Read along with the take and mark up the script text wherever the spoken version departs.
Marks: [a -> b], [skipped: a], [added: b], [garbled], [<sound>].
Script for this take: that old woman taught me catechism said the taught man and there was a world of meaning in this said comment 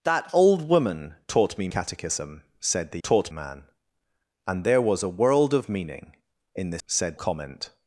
that old woman taught me catechism said the taught man and there was a world of meaning in this said comment